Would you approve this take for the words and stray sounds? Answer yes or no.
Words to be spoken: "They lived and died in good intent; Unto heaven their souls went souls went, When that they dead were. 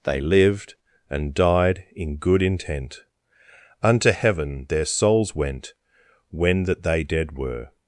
no